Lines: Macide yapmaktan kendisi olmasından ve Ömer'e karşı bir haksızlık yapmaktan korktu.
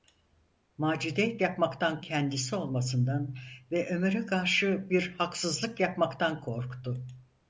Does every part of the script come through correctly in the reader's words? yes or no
yes